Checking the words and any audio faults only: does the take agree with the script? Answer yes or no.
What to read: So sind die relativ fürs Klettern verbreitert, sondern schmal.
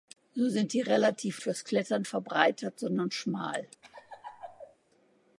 no